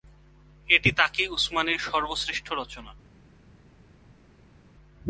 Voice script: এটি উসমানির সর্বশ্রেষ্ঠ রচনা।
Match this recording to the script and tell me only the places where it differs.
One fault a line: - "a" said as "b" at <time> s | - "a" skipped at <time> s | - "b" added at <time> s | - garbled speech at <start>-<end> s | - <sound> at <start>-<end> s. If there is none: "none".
- "তাকি" added at 0.9 s